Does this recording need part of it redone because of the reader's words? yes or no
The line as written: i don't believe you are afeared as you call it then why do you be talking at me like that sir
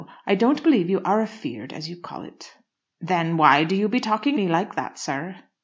yes